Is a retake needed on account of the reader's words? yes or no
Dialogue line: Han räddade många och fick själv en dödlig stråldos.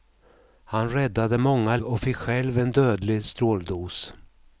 no